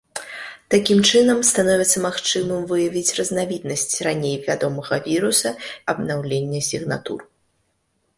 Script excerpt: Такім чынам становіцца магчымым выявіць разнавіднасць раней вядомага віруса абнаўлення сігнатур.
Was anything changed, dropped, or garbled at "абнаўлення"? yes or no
no